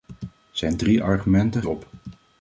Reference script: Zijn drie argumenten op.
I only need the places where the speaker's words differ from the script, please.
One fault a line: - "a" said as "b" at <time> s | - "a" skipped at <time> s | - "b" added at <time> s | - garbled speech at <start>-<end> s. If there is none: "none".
none